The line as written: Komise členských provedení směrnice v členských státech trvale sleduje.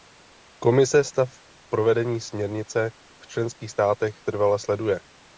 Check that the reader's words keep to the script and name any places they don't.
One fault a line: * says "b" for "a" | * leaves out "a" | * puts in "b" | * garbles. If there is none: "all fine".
* says "stav" for "členských"